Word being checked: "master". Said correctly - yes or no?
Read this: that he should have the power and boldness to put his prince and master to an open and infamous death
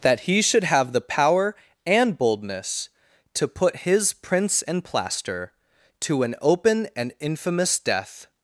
no